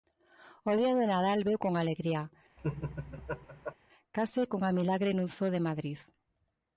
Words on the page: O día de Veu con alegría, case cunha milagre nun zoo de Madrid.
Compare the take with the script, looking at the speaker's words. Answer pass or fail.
fail